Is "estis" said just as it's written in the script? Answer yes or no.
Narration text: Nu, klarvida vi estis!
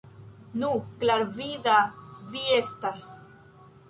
no